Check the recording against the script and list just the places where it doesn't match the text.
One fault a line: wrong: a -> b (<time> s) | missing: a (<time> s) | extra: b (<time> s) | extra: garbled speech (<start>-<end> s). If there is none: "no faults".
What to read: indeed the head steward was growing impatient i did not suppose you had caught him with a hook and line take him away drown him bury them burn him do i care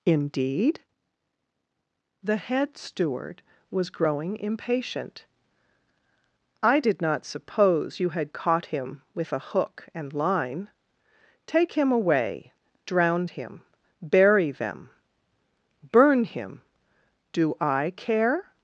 no faults